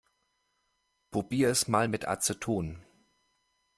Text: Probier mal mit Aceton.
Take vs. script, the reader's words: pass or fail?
fail